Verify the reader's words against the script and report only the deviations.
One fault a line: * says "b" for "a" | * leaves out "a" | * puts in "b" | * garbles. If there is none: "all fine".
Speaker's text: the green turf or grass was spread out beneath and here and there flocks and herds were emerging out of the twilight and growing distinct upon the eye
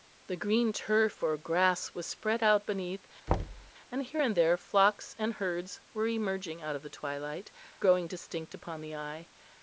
* leaves out "and"